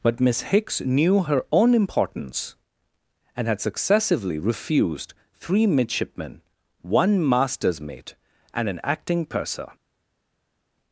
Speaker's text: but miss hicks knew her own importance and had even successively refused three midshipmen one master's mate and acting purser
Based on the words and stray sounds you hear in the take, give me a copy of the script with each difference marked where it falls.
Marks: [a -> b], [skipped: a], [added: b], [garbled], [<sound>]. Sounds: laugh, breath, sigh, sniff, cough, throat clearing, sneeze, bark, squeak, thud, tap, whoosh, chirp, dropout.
but miss hicks knew her own importance and had [skipped: even] successively refused three midshipmen one master's mate and [added: an] acting purser